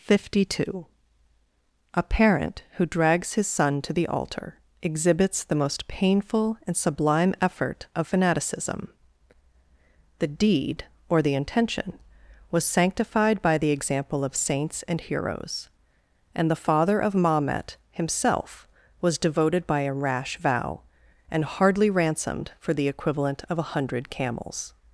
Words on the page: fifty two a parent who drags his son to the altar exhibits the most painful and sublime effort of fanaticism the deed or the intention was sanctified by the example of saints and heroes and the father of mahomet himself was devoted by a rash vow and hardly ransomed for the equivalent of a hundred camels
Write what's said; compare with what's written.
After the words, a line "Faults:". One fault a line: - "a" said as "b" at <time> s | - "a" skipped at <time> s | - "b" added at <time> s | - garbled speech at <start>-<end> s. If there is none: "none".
fifty two a parent who drags his son to the altar exhibits the most painful and sublime effort of fanaticism the deed or the intention was sanctified by the example of saints and heroes and the father of mahomet himself was devoted by a rash vow and hardly ransomed for the equivalent of a hundred camels
Faults:
none